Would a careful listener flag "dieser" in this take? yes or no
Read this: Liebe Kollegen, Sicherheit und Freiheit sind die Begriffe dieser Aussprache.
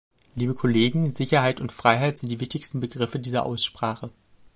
no